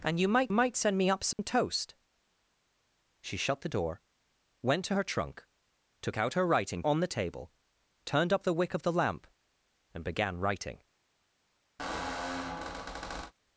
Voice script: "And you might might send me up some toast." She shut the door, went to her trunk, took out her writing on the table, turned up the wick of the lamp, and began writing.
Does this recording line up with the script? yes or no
yes